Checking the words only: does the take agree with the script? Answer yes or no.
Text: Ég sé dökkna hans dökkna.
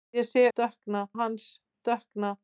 yes